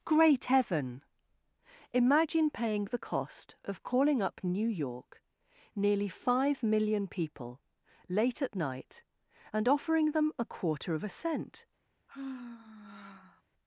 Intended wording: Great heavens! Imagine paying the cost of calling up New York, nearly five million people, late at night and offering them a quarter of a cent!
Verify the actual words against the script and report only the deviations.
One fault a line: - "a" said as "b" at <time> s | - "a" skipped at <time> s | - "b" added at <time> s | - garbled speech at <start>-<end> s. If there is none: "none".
- "heavens" said as "heaven" at 0.4 s